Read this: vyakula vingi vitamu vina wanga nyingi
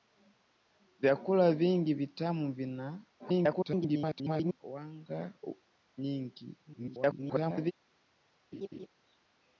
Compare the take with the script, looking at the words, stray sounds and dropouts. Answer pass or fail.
fail